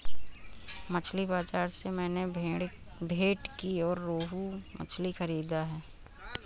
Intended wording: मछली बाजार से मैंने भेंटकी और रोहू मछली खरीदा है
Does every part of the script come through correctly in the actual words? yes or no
yes